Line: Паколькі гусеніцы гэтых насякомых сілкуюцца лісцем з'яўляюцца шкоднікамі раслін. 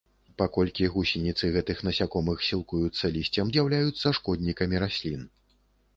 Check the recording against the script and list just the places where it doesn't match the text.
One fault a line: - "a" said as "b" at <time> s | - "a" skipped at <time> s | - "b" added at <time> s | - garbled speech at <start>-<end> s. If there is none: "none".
none